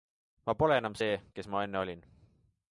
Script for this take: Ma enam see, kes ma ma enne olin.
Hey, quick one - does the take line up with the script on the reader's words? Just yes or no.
no